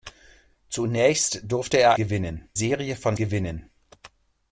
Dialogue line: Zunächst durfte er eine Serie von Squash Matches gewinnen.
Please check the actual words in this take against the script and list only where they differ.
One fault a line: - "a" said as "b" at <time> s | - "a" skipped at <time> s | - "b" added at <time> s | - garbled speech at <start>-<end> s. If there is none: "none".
- "eine" said as "gewinnen" at 1.9 s
- "Squash Matches" skipped at 3.2 s